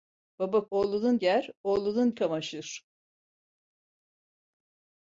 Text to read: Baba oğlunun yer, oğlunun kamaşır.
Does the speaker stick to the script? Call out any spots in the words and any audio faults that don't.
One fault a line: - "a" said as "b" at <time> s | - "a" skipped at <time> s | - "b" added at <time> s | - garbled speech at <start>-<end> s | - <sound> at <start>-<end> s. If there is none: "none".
none